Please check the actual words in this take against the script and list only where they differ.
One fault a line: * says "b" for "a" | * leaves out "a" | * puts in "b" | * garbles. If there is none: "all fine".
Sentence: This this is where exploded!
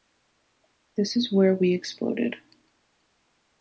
* leaves out "this"
* puts in "we"